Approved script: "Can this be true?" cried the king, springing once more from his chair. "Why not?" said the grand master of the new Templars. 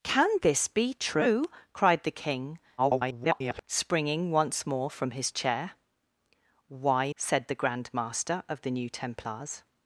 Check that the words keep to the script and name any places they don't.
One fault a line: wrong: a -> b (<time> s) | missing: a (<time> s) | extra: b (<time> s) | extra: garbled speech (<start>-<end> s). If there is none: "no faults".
extra: garbled speech (2.8-3.6 s)
missing: not (7.1 s)